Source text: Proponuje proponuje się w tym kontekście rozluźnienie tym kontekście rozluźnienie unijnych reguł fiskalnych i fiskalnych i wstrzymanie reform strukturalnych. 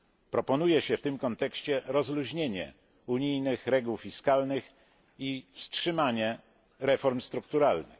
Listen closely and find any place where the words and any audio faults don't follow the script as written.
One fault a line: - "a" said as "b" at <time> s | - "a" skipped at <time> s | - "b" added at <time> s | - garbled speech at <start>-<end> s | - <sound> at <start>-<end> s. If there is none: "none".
- "proponuje" skipped at 0.8 s
- "tym kontekście rozluźnienie" skipped at 2.7 s
- "fiskalnych i" skipped at 5.4 s